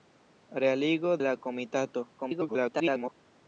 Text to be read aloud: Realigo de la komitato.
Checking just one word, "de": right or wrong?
wrong